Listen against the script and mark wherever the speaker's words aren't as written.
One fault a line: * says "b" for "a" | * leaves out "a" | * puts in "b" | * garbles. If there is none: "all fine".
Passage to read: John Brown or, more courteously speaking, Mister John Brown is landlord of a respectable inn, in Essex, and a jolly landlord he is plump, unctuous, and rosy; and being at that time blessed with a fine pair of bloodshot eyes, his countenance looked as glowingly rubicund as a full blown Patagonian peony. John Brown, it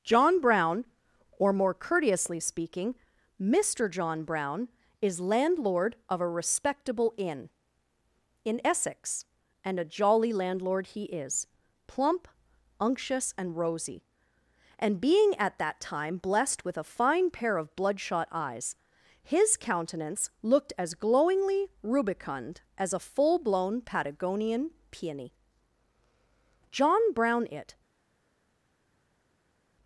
all fine